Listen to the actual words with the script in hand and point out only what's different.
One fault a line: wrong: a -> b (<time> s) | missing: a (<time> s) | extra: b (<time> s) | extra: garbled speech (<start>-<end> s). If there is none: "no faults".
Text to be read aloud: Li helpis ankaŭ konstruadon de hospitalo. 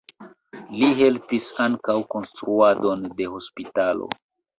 no faults